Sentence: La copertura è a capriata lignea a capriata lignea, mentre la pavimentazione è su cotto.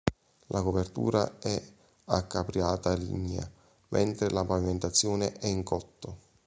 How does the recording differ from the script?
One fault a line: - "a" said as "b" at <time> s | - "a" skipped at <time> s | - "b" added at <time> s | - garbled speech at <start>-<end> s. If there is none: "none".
- "a capriata lignea" skipped at 3.5 s
- "su" said as "in" at 5.5 s